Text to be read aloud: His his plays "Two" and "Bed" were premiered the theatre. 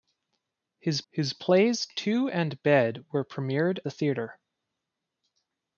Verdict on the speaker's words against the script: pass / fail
pass